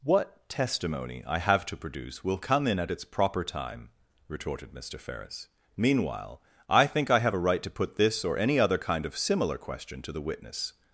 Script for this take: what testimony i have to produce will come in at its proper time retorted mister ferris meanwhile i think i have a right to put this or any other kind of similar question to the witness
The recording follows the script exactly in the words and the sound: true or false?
true